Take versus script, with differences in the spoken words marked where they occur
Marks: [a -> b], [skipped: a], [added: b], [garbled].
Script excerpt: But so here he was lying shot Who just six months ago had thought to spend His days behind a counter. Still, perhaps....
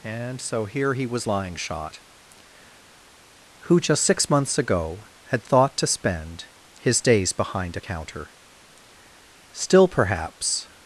[But -> And] so here he was lying shot Who just six months ago had thought to spend His days behind a counter. Still, perhaps....